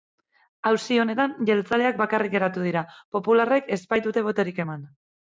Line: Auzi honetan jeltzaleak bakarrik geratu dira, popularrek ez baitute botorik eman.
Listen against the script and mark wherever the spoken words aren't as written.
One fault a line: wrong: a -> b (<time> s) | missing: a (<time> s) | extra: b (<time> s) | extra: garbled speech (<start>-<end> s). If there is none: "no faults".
no faults